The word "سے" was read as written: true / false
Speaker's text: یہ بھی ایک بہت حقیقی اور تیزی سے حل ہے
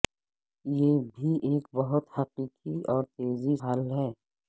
false